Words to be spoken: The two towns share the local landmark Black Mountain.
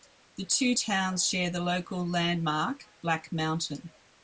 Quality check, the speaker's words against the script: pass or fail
pass